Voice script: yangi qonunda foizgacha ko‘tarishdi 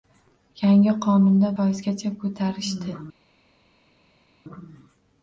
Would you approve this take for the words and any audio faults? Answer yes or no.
yes